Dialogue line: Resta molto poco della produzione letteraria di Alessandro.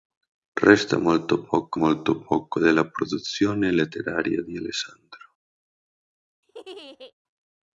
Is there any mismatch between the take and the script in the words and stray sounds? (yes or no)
yes